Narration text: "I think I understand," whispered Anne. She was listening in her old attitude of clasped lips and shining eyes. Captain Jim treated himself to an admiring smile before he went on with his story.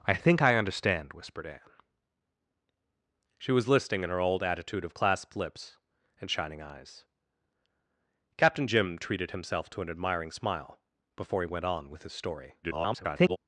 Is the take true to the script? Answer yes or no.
no